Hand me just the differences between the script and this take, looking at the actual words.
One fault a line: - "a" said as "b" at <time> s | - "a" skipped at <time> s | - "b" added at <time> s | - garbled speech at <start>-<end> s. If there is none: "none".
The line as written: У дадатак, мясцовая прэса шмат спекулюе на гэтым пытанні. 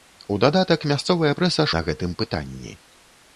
- "шмат спекулюе" skipped at 1.7 s